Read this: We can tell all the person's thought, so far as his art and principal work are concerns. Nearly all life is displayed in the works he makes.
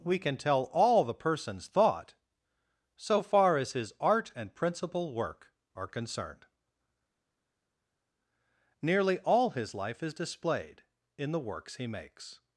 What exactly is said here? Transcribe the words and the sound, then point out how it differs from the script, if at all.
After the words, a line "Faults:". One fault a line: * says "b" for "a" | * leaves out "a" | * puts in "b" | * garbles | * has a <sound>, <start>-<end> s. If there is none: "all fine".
We can tell all the person's thought, so far as his art and principal work are concerned. Nearly all his life is displayed in the works he makes.
Faults:
* says "concerned" for "concerns"
* puts in "his"